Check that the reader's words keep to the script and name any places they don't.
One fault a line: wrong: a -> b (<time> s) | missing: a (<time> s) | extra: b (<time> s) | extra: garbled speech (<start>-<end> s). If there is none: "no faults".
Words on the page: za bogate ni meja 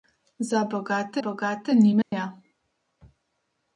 extra: bogate (1.2 s)